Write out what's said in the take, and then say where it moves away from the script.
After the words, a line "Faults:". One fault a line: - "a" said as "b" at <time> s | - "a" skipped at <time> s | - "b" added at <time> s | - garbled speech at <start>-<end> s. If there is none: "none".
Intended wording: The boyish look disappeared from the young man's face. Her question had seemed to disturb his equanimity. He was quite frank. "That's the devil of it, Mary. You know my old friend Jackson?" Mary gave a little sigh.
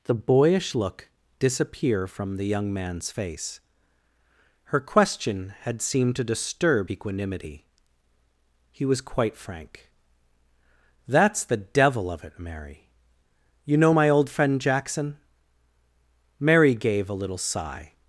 The boyish look disappear from the young man's face. Her question had seemed to disturb equanimity. He was quite frank. "That's the devil of it, Mary. You know my old friend Jackson?" Mary gave a little sigh.
Faults:
- "disappeared" said as "disappear" at 1.4 s
- "his" skipped at 6.9 s